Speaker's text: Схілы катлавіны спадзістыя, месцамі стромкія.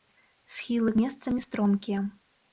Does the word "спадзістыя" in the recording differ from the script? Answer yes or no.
yes